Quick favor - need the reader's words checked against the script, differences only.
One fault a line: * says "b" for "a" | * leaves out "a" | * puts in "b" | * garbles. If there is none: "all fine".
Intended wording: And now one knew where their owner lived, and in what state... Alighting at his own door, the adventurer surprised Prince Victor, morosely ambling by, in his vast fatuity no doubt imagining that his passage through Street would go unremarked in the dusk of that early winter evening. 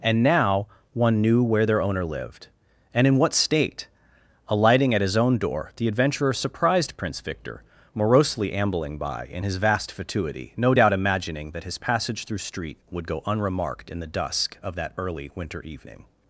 all fine